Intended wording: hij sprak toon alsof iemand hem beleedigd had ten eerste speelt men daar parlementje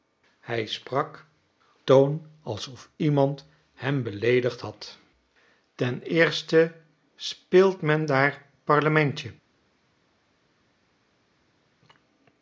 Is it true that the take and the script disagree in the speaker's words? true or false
false